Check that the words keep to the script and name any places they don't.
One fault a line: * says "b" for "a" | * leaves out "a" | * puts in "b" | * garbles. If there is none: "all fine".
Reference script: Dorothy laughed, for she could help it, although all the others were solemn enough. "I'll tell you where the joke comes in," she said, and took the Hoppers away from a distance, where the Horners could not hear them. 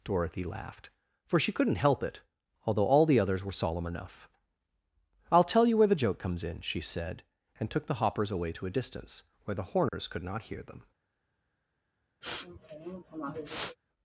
* says "couldn't" for "could"
* says "to" for "from"